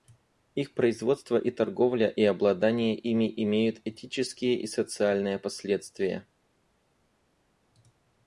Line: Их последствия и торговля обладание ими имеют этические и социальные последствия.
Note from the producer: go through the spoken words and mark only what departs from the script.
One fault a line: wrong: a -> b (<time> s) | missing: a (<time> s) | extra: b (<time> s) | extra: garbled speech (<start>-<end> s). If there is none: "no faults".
wrong: последствия -> производство (0.7 s)
extra: и (2.1 s)